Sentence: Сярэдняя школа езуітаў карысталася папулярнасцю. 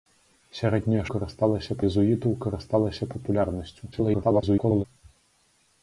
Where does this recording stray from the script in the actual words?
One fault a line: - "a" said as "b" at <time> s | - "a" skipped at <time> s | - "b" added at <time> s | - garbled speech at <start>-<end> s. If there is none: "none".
- "школа" said as "карысталася" at 1.1 s
- garbled speech at 3.9-4.8 s